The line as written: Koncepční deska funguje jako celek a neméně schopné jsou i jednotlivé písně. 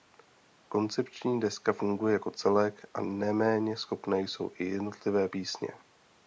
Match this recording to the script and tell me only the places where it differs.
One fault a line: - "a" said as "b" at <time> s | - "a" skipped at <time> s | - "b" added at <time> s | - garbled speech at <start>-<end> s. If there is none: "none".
none